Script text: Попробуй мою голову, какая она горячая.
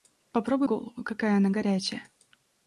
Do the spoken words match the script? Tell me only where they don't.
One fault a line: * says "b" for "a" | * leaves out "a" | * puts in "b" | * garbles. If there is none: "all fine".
* leaves out "мою"